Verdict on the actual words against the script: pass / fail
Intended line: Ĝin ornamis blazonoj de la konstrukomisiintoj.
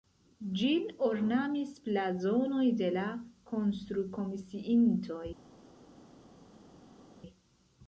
pass